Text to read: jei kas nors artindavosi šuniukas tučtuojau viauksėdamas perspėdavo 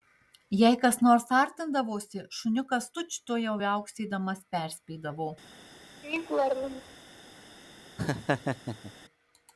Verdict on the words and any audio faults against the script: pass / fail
fail